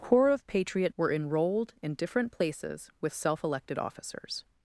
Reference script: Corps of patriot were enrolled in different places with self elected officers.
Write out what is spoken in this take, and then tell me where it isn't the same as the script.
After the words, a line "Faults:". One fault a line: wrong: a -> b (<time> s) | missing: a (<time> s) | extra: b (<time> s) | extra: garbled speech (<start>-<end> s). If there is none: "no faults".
Corps of patriot were enrolled in different places with self elected officers.
Faults:
no faults